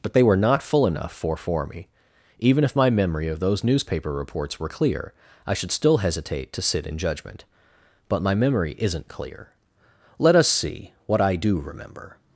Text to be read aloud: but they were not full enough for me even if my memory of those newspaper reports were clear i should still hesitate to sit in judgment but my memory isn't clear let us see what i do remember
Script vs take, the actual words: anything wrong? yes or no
yes